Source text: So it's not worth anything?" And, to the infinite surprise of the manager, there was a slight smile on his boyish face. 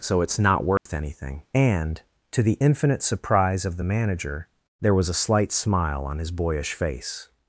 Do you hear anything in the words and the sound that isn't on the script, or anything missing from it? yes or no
yes